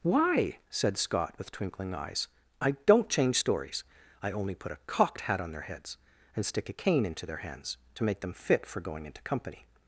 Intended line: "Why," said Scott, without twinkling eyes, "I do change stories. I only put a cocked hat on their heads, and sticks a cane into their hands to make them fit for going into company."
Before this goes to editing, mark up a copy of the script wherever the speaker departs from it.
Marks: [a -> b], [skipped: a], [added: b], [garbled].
"Why," said Scott, [without -> with] twinkling eyes, "I [do -> don't] change stories. I only put a cocked hat on their heads, and [sticks -> stick] a cane into their hands to make them fit for going into company."